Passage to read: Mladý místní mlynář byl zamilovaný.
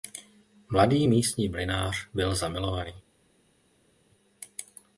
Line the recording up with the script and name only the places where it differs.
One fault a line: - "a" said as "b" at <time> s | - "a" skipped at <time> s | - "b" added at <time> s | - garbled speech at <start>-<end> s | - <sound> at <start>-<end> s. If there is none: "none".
none